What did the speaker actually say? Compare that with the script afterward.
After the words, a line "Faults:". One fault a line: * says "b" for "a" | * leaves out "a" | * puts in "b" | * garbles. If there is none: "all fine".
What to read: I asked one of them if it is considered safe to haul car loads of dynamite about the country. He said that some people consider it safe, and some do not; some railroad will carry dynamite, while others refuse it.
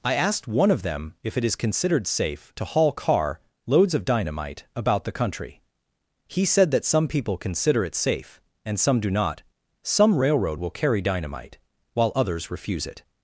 I asked one of them if it is considered safe to haul car loads of dynamite about the country. He said that some people consider it safe, and some do not; some railroad will carry dynamite, while others refuse it.
Faults:
all fine